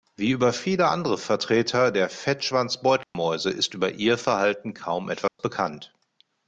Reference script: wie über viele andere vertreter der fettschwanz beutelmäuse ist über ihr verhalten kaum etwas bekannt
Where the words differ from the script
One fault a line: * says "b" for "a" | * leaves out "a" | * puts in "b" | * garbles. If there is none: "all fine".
all fine